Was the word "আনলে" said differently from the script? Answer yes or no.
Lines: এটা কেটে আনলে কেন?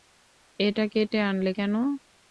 no